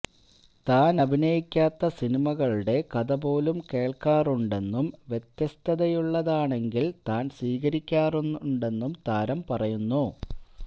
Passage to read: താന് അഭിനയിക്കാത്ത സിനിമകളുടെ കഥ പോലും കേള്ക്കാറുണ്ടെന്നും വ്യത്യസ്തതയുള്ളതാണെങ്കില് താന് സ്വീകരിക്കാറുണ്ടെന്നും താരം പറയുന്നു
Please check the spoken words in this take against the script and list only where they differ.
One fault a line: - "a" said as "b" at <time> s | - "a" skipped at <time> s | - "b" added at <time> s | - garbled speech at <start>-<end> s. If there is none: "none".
none